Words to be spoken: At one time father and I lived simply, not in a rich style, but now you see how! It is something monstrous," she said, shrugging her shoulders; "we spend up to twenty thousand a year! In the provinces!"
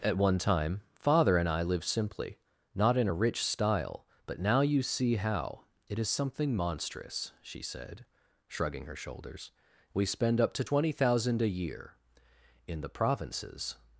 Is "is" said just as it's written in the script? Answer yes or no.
yes